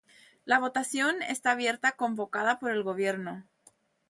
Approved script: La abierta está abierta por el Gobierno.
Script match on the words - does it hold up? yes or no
no